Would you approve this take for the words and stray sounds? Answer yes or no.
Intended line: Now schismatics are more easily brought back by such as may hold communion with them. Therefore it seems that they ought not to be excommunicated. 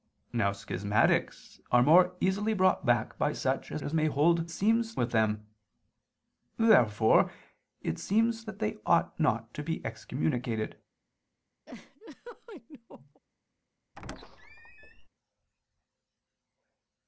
no